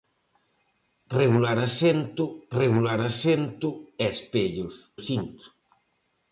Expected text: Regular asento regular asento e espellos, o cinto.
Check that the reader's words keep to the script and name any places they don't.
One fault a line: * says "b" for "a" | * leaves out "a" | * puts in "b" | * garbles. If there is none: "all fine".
all fine